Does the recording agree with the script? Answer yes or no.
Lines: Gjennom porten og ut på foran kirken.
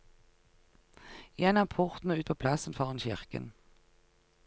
no